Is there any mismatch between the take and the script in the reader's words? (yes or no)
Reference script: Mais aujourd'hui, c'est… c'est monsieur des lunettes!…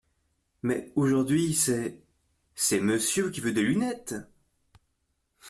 yes